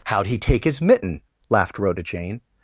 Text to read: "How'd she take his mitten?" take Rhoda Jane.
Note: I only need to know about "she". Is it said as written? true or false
false